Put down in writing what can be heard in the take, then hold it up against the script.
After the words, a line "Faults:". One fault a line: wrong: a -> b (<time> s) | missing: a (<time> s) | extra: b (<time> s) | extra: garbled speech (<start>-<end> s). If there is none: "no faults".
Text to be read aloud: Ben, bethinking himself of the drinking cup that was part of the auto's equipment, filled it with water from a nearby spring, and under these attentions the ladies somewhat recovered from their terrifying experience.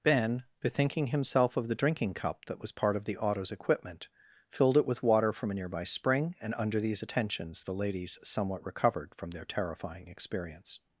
Ben, bethinking himself of the drinking cup that was part of the auto's equipment, filled it with water from a nearby spring, and under these attentions the ladies somewhat recovered from their terrifying experience.
Faults:
no faults